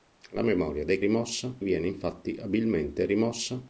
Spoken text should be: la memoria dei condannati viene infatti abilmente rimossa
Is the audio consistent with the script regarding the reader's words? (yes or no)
no